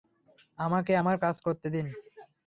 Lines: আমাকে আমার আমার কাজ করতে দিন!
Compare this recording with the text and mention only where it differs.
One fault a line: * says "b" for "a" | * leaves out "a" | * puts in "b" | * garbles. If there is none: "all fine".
* leaves out "আমার"